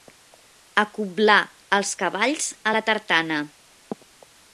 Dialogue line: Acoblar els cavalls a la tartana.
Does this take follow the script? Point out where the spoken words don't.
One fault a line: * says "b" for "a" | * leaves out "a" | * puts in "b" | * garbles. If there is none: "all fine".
all fine